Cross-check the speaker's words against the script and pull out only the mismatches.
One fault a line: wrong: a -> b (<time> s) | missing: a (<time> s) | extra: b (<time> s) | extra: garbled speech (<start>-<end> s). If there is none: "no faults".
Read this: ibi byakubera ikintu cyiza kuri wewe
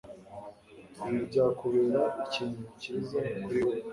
no faults